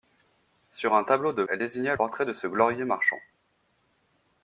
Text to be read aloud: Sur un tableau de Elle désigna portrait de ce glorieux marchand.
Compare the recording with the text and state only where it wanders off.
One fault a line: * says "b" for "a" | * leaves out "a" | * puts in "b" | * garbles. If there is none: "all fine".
all fine